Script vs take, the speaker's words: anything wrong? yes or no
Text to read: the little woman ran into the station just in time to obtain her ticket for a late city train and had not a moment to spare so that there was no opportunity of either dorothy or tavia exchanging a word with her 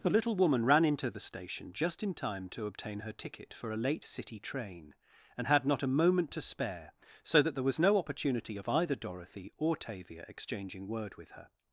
yes